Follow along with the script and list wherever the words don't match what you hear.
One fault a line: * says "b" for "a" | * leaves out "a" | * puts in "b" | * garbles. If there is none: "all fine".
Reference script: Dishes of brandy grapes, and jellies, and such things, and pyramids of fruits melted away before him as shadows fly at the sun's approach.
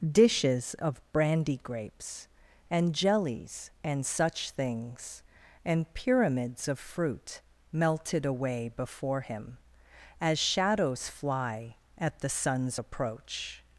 * says "fruit" for "fruits"